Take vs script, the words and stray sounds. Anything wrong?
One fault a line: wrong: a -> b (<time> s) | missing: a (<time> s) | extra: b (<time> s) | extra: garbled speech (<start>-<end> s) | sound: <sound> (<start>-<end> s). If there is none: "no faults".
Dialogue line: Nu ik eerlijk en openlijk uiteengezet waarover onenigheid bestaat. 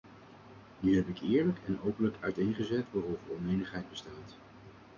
extra: heb (0.9 s)